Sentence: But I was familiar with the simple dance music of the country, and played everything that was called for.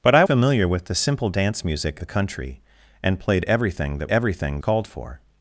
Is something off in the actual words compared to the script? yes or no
yes